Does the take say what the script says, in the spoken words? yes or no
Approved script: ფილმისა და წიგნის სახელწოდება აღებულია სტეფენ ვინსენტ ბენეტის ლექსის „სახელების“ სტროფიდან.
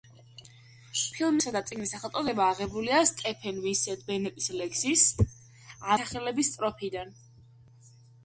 yes